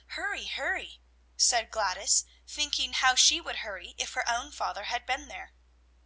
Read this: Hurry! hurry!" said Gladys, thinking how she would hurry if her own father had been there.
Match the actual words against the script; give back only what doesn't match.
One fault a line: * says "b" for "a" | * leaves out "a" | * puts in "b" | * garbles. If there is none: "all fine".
all fine